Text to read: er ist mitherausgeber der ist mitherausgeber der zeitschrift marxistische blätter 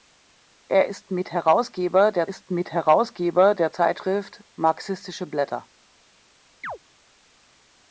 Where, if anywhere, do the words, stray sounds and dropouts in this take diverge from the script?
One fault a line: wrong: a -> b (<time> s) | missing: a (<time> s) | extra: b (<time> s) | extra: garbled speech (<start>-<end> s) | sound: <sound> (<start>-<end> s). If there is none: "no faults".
sound: chirp (6.6-6.8 s)